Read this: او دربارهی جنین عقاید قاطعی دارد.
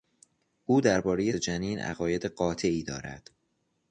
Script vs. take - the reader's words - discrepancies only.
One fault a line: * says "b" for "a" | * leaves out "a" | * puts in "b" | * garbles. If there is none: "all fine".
all fine